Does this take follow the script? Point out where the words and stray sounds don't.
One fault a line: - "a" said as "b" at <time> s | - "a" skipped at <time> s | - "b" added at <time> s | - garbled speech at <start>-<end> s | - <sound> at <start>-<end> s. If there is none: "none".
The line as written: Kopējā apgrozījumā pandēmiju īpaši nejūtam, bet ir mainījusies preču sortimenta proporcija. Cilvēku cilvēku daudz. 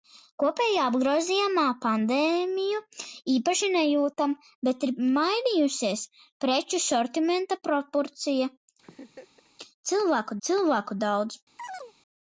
- laugh at 8.8-9.5 s
- chirp at 11.6-11.9 s